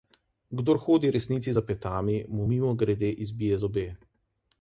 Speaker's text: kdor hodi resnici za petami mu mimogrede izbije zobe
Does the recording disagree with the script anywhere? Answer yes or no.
no